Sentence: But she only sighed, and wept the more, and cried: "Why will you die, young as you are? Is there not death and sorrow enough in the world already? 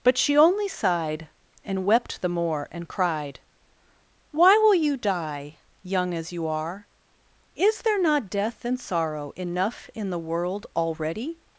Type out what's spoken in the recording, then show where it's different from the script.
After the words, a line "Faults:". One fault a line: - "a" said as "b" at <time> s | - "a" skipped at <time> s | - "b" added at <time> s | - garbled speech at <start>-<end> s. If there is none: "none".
But she only sighed, and wept the more, and cried: "Why will you die, young as you are? Is there not death and sorrow enough in the world already?
Faults:
none